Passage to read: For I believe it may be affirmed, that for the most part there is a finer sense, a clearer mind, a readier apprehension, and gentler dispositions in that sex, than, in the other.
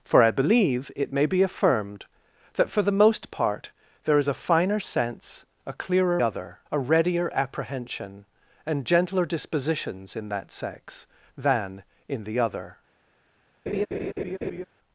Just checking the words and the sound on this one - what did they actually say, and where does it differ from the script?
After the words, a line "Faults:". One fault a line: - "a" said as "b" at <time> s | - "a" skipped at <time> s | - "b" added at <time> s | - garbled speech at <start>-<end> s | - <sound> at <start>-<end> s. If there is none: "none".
For I believe it may be affirmed, that for the most part there is a finer sense, a clearer other, a readier apprehension, and gentler dispositions in that sex, than, in the other.
Faults:
- "mind" said as "other" at 6.2 s
- laugh at 13.7-14.7 s